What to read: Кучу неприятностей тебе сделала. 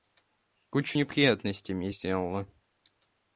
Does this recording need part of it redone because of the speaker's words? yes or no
yes